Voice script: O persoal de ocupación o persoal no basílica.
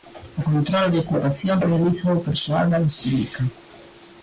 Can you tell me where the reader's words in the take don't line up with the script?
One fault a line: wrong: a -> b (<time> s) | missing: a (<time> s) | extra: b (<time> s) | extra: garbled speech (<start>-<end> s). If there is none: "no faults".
wrong: persoal -> control (0.5 s)
extra: realízao (1.6 s)
wrong: no -> da (2.7 s)